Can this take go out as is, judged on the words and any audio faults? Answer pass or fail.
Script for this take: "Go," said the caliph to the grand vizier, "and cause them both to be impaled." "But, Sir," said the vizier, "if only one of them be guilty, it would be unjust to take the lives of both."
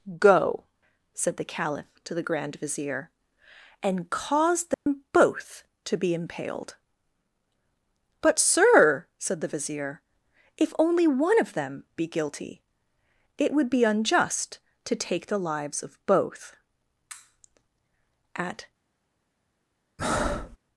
fail